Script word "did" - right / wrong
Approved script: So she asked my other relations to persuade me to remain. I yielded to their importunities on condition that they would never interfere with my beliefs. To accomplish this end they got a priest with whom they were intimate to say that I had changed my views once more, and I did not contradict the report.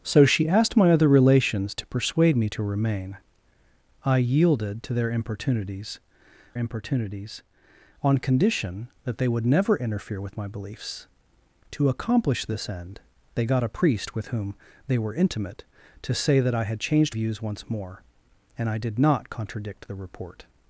right